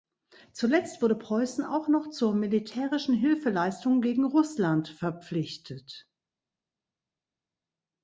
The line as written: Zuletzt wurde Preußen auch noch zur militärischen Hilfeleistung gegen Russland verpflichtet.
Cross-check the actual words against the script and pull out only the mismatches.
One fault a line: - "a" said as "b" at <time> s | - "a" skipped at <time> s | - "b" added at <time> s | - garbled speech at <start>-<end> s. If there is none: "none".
none